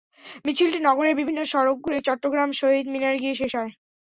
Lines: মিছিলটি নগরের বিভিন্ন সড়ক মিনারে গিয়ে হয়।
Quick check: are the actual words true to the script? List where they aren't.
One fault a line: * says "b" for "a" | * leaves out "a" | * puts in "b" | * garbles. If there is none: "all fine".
* puts in "ঘুরে চট্টগ্রাম শহীদ"
* puts in "শেষ"